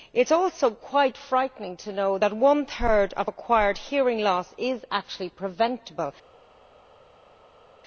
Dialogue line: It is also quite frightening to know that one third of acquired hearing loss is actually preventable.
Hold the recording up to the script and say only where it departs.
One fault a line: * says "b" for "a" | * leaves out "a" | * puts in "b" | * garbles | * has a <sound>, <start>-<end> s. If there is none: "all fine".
all fine